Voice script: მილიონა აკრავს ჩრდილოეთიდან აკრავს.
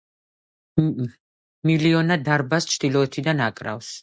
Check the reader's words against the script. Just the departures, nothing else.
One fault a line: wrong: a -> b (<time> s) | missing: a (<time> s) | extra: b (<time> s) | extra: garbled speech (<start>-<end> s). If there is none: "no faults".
wrong: აკრავს -> დარბაზს (2.3 s)